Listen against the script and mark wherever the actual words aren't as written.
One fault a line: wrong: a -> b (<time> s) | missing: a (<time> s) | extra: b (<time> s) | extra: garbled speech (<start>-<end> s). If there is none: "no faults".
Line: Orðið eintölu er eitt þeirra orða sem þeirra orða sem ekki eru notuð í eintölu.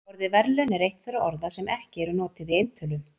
wrong: eintölu -> verðlaun (0.3 s)
missing: þeirra orða sem (1.7 s)